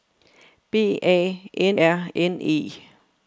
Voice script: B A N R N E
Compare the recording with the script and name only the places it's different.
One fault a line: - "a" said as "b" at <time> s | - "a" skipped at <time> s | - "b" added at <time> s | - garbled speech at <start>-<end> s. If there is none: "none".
none